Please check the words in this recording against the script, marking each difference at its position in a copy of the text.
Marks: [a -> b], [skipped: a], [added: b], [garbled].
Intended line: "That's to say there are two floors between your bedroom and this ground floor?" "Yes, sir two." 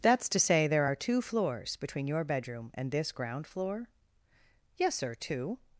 "That's to say there are two floors between your bedroom and this ground floor?" "Yes, sir two."